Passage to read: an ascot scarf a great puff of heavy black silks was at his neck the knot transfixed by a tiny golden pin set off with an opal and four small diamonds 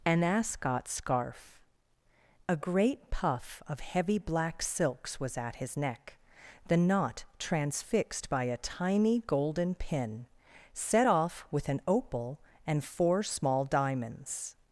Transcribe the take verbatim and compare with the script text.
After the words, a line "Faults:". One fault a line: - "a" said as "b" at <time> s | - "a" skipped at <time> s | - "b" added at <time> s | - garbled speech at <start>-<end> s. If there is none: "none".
an ascot scarf a great puff of heavy black silks was at his neck the knot transfixed by a tiny golden pin set off with an opal and four small diamonds
Faults:
none